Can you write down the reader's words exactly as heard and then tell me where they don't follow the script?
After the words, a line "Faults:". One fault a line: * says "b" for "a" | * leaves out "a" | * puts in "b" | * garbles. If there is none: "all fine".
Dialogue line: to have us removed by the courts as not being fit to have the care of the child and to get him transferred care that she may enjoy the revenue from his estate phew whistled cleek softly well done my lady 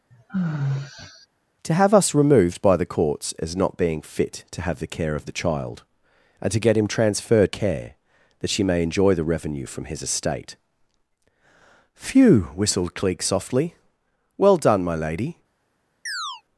to have us removed by the courts as not being fit to have the care of the child and to get him transferred care that she may enjoy the revenue from his estate phew whistled cleek softly well done my lady
Faults:
all fine